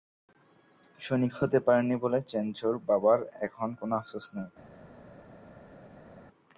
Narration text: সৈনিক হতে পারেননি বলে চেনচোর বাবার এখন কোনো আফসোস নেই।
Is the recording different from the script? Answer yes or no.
no